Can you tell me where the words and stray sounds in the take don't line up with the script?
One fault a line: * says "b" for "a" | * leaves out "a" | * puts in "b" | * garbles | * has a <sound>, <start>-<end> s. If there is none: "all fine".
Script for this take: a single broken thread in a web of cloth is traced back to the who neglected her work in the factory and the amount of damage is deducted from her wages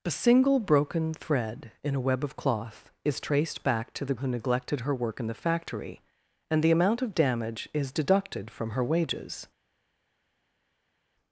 all fine